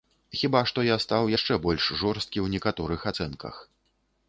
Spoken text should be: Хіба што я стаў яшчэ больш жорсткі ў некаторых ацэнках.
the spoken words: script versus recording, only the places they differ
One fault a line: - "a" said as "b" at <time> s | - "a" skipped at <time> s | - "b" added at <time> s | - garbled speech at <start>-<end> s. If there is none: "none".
none